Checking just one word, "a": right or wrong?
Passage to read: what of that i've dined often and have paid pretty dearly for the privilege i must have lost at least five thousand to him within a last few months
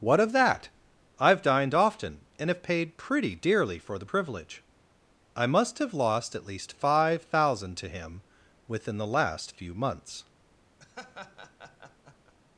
wrong